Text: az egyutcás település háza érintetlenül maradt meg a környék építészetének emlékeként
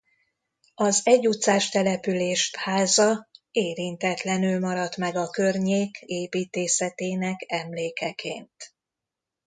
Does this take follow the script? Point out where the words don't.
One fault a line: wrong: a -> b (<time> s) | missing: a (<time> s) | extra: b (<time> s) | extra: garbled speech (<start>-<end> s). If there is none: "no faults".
no faults